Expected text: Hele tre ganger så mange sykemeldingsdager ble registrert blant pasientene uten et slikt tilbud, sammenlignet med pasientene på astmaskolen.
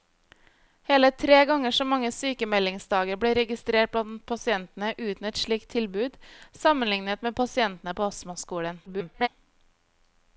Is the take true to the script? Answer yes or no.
no